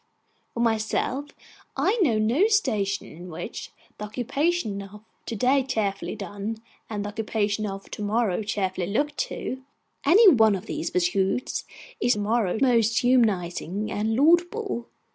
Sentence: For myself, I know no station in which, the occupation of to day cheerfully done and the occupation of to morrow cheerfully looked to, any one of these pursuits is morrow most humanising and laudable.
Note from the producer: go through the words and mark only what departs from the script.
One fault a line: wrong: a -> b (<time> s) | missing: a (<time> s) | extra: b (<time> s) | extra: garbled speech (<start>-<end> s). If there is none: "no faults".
no faults